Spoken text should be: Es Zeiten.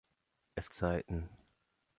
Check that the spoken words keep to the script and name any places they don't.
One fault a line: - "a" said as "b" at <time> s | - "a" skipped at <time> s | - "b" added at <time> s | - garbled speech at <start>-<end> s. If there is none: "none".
none